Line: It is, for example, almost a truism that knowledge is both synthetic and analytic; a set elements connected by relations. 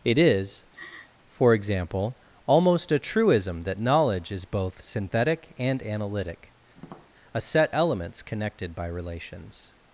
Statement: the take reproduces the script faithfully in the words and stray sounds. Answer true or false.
false